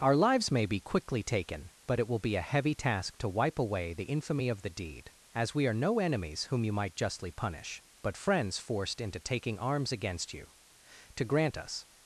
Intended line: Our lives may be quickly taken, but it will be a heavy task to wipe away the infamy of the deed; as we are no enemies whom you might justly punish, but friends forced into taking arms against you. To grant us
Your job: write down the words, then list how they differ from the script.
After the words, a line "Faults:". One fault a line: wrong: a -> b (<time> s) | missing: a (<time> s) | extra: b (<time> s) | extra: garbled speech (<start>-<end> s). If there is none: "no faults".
Our lives may be quickly taken, but it will be a heavy task to wipe away the infamy of the deed; as we are no enemies whom you might justly punish, but friends forced into taking arms against you. To grant us
Faults:
no faults